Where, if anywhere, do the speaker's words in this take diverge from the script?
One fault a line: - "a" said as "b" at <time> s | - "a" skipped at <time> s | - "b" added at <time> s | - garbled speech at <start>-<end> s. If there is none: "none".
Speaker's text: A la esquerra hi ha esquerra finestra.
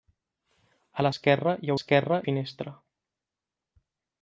none